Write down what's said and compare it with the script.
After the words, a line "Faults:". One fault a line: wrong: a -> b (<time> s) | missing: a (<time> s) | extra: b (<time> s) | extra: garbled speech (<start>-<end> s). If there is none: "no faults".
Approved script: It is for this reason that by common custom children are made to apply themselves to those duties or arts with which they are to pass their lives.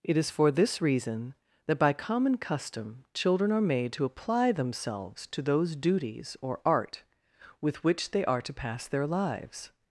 It is for this reason that by common custom children are made to apply themselves to those duties or art with which they are to pass their lives.
Faults:
wrong: arts -> art (6.7 s)